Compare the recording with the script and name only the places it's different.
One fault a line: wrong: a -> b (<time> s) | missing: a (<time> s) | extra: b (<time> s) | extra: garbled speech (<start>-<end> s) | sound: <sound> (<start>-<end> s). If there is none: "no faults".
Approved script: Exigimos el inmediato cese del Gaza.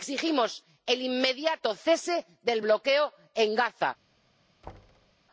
extra: bloqueo en (2.6 s)
sound: thud (4.6-5.1 s)